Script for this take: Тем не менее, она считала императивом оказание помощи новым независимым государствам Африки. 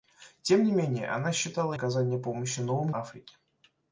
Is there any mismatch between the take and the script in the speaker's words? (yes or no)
yes